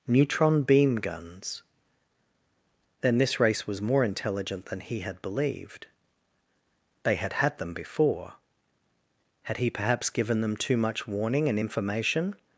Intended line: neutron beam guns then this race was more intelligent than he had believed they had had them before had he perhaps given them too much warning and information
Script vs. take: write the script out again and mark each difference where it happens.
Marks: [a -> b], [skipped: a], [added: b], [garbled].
neutron beam guns then this race was more intelligent than he had believed they had had them before had he perhaps given them too much warning and information